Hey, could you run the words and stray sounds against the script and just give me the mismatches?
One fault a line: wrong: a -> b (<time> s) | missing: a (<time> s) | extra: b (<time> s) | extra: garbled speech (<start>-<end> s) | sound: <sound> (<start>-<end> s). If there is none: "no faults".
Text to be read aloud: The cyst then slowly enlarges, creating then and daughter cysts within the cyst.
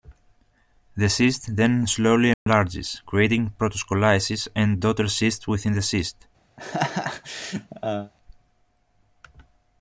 sound: dropout (2.3-2.5 s)
wrong: then -> protoscolices (3.6 s)
sound: laugh (6.6-8.1 s)